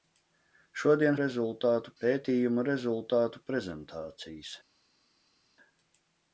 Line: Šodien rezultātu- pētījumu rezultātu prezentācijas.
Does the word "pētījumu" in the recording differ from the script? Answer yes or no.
no